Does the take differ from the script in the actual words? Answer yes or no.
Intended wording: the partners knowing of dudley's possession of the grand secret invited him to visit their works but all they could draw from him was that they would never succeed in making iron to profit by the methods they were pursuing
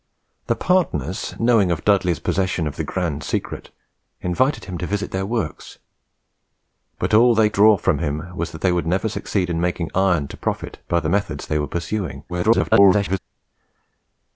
yes